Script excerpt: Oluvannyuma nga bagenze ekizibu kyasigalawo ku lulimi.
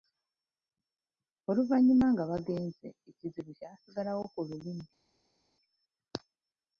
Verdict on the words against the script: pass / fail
pass